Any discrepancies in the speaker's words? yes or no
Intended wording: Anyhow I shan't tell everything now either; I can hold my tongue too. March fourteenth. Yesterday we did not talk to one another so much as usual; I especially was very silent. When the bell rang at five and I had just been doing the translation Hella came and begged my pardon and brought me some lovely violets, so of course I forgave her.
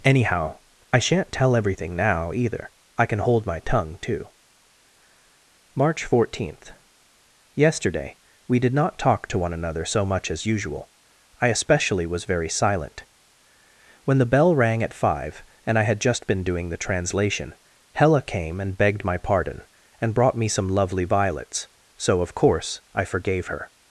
no